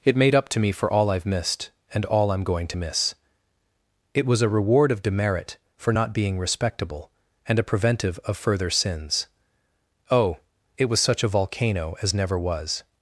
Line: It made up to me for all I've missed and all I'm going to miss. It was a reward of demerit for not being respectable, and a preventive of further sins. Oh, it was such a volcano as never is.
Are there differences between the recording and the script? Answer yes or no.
yes